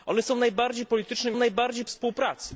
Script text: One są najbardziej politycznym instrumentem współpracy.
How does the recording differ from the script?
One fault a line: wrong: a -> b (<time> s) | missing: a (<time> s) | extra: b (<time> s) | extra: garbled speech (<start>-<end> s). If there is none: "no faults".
wrong: instrumentem -> najbardziej (1.3 s)